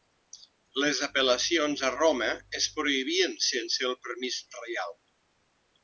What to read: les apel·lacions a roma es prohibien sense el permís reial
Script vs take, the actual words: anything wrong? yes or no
no